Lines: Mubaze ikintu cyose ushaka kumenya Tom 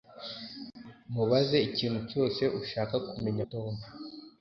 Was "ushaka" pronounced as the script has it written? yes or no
yes